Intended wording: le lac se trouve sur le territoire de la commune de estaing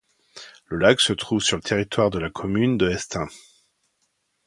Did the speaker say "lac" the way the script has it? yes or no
yes